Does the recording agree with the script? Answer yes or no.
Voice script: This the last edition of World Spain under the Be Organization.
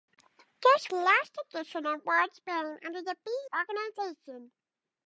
yes